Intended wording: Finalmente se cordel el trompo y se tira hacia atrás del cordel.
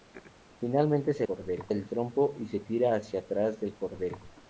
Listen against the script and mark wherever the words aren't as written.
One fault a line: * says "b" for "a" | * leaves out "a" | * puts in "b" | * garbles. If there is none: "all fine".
all fine